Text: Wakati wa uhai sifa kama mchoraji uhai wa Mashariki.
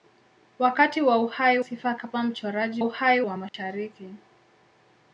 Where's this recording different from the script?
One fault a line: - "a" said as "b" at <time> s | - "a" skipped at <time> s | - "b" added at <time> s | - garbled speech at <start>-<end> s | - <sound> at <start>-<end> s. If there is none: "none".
- dropout at 3.5-3.5 s